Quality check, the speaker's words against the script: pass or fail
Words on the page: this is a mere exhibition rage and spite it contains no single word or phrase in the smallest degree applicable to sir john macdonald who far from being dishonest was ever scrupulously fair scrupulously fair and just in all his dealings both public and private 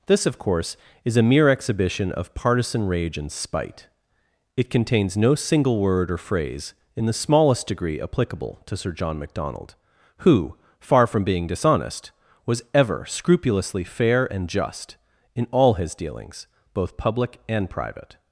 fail